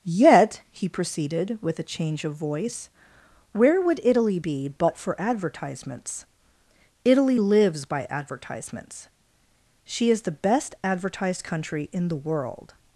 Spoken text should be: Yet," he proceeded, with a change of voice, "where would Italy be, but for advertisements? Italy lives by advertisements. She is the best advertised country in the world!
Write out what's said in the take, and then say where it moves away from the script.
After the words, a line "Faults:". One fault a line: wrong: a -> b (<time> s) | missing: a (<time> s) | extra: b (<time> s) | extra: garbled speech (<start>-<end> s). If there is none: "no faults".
Yet," he proceeded, with a change of voice, "where would Italy be, but for advertisements? Italy lives by advertisements. She is the best advertised country in the world!
Faults:
no faults